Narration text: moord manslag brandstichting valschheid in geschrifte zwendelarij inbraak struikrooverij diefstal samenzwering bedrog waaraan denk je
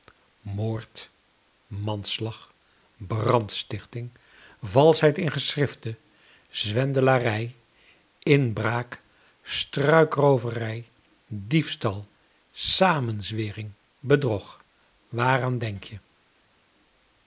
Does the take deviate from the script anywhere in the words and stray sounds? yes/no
no